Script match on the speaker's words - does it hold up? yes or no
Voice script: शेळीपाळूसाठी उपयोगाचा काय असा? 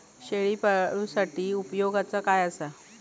yes